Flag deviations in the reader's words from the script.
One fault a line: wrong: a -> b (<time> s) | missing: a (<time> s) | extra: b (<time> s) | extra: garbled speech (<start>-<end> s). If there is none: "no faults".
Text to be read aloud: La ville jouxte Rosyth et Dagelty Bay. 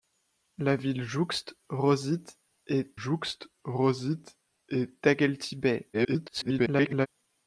extra: jouxte Rosyth et (2.9 s)
extra: garbled speech (5.9-7.1 s)